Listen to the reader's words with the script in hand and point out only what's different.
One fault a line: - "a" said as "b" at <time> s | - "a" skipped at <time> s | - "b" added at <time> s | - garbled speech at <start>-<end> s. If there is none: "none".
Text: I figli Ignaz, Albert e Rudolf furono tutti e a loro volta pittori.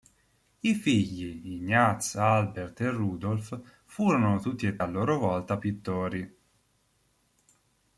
none